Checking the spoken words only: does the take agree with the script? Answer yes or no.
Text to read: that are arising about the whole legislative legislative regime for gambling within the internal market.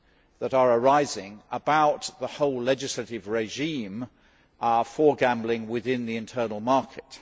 no